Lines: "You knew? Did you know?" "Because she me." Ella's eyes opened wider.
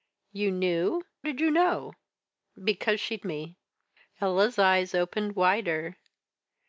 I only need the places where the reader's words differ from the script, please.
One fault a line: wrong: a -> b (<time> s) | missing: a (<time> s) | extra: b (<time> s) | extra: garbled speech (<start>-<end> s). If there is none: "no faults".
no faults